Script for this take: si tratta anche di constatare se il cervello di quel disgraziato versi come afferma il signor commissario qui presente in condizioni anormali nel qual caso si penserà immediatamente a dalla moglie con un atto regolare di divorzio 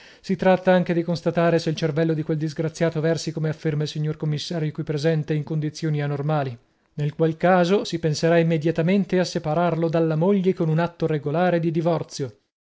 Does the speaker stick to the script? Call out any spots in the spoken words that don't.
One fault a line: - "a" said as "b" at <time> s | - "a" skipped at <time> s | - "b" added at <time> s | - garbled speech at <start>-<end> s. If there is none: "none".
- "separarlo" added at 9.2 s